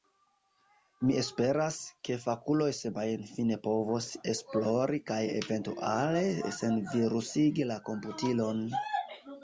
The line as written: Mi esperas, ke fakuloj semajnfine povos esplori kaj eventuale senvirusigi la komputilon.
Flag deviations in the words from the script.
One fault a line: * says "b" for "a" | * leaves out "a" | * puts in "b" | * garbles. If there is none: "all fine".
all fine